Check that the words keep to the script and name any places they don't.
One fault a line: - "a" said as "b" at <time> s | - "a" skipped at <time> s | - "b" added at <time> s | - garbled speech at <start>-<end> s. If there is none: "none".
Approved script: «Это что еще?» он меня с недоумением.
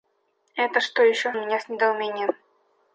none